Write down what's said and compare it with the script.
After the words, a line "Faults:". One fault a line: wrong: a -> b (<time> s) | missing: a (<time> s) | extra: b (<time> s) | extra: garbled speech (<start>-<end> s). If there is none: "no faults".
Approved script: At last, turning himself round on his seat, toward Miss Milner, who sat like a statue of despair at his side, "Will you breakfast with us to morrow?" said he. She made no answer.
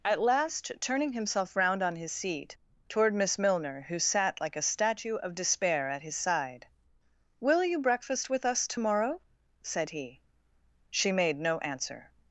At last, turning himself round on his seat, toward Miss Milner, who sat like a statue of despair at his side, "Will you breakfast with us to morrow?" said he. She made no answer.
Faults:
no faults